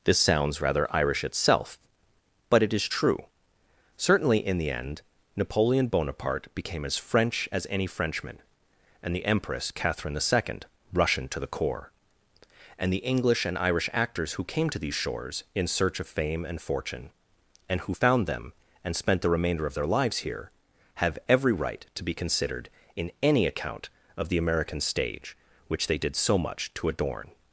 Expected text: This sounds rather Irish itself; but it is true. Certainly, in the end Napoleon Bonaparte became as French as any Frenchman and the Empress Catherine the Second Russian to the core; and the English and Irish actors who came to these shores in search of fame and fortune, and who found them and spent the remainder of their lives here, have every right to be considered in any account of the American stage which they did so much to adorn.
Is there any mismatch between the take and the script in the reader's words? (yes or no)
no